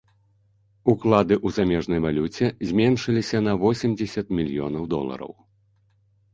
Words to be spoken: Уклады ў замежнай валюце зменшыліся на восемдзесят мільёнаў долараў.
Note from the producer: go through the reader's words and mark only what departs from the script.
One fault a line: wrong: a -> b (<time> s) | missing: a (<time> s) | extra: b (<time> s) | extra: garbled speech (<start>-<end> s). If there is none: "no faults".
no faults